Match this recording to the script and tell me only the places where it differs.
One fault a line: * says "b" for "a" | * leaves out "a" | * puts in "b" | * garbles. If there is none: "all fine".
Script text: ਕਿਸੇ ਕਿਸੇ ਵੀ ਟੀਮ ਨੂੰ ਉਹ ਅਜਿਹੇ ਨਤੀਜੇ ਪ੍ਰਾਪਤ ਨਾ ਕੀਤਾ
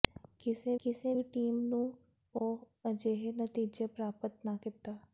all fine